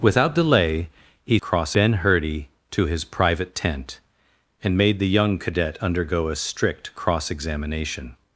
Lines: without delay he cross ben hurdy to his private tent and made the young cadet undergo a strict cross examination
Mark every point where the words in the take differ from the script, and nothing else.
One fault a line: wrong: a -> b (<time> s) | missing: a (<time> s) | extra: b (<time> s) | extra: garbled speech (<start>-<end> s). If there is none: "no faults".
no faults